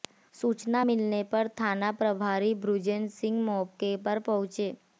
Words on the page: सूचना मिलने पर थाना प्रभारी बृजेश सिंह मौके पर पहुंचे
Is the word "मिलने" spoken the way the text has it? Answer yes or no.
yes